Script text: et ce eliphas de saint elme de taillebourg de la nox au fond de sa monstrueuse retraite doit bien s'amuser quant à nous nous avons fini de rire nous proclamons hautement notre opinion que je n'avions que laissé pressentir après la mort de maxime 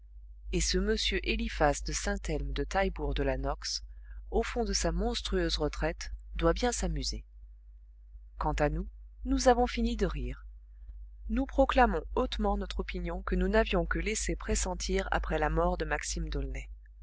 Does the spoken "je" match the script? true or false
false